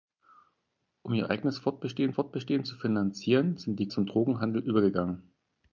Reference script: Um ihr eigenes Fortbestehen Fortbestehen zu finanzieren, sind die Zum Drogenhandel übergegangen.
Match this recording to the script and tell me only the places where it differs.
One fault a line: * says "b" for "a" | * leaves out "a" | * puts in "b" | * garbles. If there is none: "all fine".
all fine